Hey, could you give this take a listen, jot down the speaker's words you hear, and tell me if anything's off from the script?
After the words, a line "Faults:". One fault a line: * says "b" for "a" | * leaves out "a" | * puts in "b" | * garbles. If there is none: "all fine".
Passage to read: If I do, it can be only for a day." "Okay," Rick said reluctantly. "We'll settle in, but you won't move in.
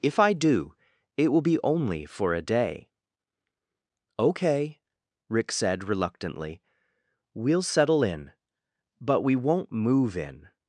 If I do, it will be only for a day." "Okay," Rick said reluctantly. "We'll settle in, but we won't move in.
Faults:
* says "will" for "can"
* says "we" for "you"